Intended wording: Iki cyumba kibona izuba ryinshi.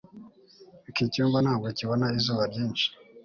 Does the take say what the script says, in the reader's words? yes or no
no